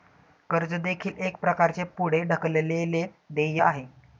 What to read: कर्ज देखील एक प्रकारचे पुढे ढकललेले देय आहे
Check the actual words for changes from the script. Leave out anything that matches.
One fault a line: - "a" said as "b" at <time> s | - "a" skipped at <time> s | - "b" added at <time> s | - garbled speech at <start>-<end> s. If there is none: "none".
none